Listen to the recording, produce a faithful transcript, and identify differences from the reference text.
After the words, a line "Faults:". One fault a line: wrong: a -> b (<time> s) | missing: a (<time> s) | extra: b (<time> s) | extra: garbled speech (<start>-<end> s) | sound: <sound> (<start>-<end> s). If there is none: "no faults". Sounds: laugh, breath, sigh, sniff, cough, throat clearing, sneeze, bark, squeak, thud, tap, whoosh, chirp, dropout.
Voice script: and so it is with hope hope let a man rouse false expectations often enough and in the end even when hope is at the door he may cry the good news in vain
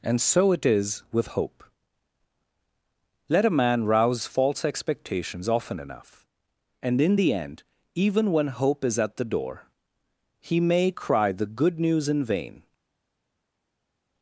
and so it is with hope let a man rouse false expectations often enough and in the end even when hope is at the door he may cry the good news in vain
Faults:
missing: hope (1.6 s)